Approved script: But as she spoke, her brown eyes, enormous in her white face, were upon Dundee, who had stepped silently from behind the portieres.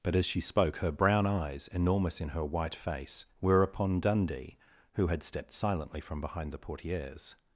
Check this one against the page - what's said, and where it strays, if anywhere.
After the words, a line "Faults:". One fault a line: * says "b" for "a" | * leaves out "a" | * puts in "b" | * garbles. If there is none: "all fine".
But as she spoke, her brown eyes, enormous in her white face, were upon Dundee, who had stepped silently from behind the portieres.
Faults:
all fine